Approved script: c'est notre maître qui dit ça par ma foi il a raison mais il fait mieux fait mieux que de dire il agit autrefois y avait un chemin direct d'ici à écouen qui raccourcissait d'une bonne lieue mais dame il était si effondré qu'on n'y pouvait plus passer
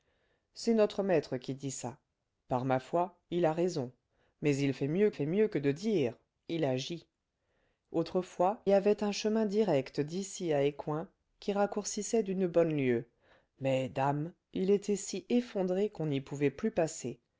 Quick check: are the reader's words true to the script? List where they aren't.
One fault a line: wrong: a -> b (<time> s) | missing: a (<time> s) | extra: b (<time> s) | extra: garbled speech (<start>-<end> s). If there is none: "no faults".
no faults